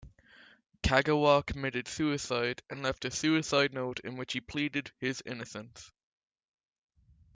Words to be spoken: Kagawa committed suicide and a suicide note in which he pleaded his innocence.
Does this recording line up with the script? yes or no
no